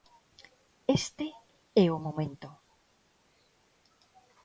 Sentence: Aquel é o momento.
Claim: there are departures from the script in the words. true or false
true